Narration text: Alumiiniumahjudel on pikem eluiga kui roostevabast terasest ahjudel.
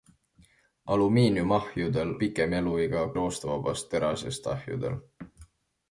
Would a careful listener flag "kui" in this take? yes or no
yes